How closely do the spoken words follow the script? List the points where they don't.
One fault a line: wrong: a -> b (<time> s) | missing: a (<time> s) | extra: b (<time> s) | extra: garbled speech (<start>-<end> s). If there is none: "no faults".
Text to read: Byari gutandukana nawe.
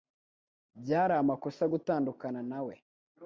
extra: amakosa (1.1 s)